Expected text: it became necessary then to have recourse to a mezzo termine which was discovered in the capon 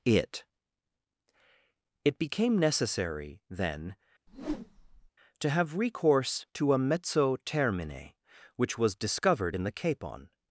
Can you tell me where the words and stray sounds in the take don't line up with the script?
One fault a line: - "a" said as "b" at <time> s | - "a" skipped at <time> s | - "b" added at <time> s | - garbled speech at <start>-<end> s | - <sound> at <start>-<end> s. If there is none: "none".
- "it" added at 2.0 s
- whoosh at 4.3-5.1 s